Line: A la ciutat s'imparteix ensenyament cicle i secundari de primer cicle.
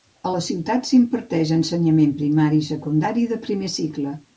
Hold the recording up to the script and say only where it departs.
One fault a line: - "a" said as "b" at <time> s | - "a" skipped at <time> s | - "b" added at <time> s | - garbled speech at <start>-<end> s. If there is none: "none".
- "cicle" said as "primari" at 2.2 s